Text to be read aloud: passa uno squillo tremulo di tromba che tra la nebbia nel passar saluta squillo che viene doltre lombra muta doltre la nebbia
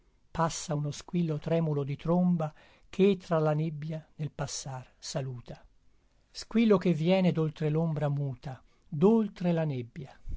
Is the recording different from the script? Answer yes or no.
no